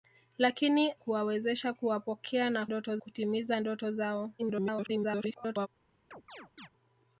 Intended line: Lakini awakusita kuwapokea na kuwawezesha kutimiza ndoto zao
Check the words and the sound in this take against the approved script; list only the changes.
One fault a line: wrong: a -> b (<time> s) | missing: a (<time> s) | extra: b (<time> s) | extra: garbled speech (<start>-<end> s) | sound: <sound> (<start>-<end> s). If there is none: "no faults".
wrong: awakusita -> kuwawezesha (0.9 s)
wrong: kuwawezesha -> ndoto (2.6 s)
extra: garbled speech (4.4-5.7 s)
sound: chirp (6.1-6.7 s)